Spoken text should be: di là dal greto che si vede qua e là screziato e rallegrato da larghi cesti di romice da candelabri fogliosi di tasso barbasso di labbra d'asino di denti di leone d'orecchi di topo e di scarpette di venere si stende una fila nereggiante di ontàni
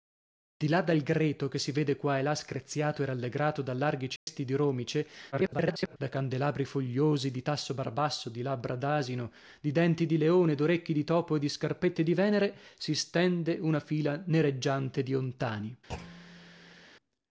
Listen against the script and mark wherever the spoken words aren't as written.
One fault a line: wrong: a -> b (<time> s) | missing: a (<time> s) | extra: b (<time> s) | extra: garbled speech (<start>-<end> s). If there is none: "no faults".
extra: garbled speech (5.3-6.0 s)